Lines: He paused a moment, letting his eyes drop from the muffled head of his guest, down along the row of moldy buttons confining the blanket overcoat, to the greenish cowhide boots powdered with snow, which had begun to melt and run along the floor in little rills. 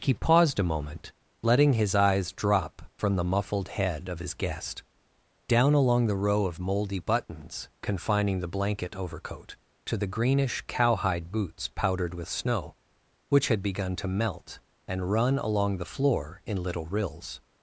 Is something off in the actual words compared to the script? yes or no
no